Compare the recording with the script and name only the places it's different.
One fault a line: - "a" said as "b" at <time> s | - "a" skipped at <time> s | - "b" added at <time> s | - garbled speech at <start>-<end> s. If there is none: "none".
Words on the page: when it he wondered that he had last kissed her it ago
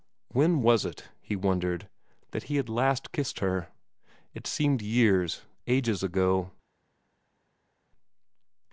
- "was" added at 0.6 s
- "seemed years ages" added at 4.5 s